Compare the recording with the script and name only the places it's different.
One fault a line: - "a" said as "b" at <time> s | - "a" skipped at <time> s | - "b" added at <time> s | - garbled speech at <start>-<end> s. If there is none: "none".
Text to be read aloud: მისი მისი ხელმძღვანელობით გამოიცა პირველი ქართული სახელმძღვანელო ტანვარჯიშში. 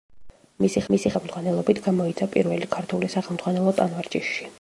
none